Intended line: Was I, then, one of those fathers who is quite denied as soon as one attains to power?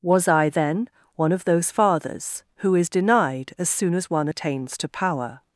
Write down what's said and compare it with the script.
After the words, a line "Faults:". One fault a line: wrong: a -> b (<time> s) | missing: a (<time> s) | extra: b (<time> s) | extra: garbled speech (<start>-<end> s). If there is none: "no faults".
Was I, then, one of those fathers who is denied as soon as one attains to power?
Faults:
missing: quite (2.9 s)